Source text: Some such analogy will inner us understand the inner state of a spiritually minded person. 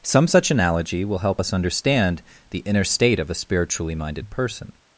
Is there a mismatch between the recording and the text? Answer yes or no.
yes